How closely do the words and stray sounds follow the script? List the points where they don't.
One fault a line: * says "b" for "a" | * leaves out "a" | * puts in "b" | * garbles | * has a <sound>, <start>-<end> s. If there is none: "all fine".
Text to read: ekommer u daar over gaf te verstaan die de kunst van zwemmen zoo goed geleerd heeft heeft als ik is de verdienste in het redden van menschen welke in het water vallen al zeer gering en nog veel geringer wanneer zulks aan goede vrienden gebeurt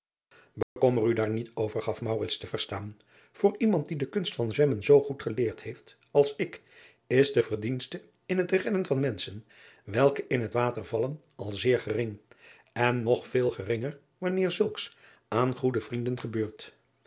* has a dropout, 0.6-0.8 s
* puts in "niet"
* puts in "voor iemand"
* leaves out "heeft"